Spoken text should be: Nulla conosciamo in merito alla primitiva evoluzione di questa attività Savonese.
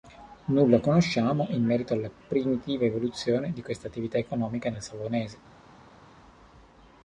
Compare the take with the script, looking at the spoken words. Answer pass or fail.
fail